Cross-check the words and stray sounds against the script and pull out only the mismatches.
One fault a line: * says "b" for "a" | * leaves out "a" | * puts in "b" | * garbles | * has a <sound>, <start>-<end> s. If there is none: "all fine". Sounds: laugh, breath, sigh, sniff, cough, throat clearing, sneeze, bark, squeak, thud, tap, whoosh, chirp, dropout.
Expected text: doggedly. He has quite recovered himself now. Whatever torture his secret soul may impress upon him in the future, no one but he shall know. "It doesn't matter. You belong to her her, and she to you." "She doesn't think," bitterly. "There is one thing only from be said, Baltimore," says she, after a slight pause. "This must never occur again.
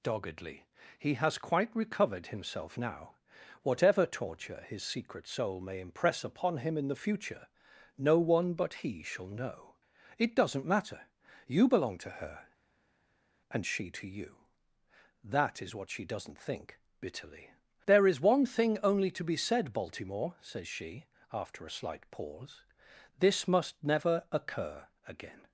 * leaves out "her"
* puts in "That is what"
* says "to" for "from"